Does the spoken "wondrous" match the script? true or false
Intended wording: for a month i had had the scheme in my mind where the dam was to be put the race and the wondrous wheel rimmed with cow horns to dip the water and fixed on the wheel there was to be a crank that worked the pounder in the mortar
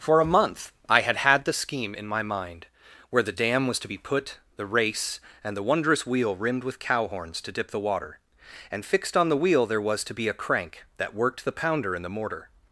true